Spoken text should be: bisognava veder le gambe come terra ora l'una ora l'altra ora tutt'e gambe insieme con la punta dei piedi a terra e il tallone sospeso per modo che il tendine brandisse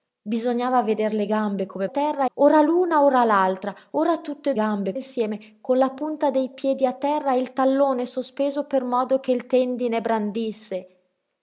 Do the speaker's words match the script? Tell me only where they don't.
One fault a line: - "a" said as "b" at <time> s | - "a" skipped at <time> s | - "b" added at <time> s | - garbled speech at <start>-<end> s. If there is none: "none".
none